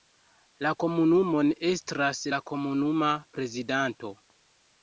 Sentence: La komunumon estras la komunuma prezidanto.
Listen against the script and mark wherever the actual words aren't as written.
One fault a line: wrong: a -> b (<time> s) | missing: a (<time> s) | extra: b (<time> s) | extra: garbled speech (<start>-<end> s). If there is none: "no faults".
no faults